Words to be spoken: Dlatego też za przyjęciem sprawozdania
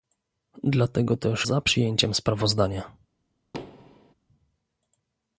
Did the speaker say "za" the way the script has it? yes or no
yes